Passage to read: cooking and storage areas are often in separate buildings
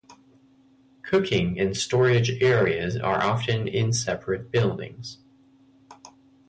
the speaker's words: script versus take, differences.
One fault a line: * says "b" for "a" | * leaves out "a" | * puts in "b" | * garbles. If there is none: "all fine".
all fine